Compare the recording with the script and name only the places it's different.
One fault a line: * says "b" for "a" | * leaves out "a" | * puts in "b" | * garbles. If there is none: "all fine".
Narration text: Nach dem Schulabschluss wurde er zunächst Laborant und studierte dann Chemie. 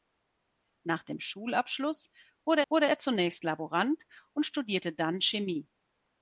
* puts in "wurde"